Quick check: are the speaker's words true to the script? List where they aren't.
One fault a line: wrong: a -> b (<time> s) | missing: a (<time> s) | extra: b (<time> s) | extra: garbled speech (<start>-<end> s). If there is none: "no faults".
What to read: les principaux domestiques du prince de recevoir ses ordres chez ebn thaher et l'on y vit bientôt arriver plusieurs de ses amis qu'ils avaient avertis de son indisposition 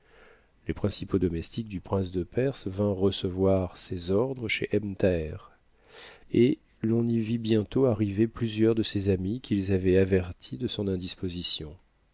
extra: perse vinrent (2.2 s)